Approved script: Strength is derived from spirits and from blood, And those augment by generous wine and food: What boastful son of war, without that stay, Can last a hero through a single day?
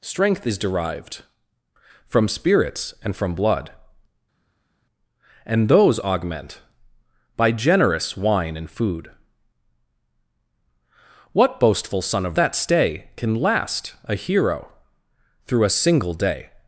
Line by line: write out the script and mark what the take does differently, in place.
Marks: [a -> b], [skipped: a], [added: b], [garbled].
Strength is derived from spirits and from blood, And those augment by generous wine and food: What boastful son of [skipped: war, without] that stay, Can last a hero through a single day?